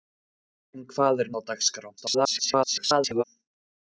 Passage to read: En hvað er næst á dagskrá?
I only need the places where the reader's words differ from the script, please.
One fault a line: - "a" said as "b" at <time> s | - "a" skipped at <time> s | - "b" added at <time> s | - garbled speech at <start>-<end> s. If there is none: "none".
- "næst" skipped at 1.3 s
- garbled speech at 2.0-3.2 s